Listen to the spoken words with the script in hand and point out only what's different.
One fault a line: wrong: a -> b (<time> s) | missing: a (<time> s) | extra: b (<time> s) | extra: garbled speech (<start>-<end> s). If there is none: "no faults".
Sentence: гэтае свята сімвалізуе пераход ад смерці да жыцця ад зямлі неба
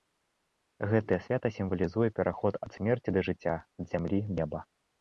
no faults